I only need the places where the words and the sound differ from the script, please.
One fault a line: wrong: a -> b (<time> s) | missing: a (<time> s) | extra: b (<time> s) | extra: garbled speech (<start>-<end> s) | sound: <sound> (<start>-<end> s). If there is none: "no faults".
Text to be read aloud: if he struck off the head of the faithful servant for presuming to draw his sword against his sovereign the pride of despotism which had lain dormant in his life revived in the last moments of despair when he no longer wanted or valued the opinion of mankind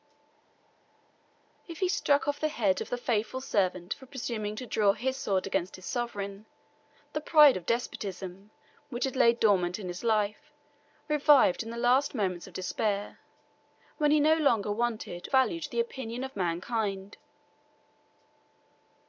missing: or (15.3 s)